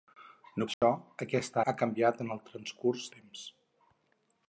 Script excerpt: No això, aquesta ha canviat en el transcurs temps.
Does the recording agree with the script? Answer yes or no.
yes